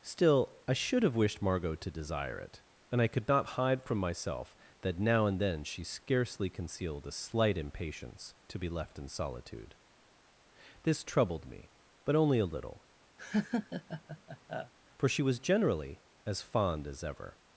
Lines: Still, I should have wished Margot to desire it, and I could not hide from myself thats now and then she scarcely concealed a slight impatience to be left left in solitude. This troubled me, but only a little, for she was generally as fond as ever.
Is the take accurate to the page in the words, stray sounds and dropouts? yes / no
no